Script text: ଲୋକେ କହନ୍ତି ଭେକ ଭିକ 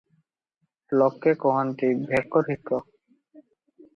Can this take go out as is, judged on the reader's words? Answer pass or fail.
pass